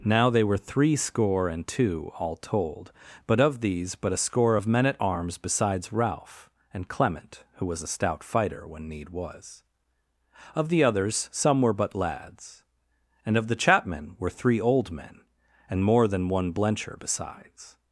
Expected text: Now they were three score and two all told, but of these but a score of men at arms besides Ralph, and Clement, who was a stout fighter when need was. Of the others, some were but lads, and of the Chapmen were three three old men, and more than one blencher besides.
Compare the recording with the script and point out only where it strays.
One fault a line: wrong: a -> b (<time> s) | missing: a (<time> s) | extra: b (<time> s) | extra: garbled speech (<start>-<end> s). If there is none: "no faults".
missing: three (14.6 s)